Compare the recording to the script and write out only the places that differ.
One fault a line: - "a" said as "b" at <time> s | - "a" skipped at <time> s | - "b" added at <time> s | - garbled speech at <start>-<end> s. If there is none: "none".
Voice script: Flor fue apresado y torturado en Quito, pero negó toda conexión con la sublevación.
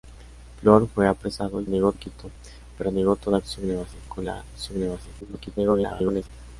- "torturado" said as "negó" at 1.7 s
- "conexión" said as "sublevación" at 3.4 s
- garbled speech at 5.2-6.3 s